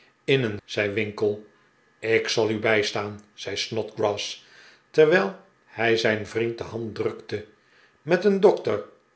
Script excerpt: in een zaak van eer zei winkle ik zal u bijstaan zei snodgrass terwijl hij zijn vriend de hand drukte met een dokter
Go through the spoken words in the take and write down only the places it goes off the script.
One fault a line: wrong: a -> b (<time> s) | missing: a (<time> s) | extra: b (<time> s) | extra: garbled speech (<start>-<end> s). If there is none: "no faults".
missing: zaak van eer (0.6 s)